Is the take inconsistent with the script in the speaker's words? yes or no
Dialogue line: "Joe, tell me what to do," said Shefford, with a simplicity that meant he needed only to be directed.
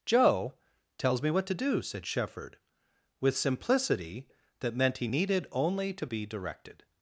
yes